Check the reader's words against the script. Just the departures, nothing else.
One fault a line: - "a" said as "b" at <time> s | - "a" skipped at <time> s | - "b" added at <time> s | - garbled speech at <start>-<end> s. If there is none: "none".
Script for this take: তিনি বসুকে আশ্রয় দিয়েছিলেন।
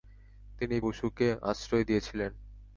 none